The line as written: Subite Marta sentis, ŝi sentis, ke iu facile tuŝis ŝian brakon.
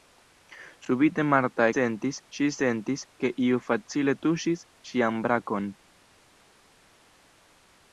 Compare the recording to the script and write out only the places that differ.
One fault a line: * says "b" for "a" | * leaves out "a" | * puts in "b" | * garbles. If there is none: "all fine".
all fine